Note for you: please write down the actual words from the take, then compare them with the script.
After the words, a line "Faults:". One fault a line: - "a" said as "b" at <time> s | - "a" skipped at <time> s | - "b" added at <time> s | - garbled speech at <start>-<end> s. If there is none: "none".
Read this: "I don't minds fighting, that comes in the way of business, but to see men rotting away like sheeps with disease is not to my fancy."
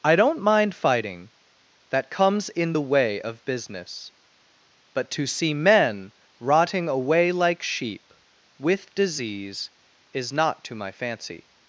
"I don't mind fighting, that comes in the way of business, but to see men rotting away like sheep with disease is not to my fancy."
Faults:
- "minds" said as "mind" at 0.4 s
- "sheeps" said as "sheep" at 7.6 s